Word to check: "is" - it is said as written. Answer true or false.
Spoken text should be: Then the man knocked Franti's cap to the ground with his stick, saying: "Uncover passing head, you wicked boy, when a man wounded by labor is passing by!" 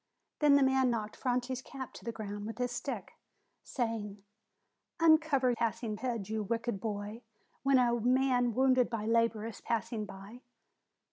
true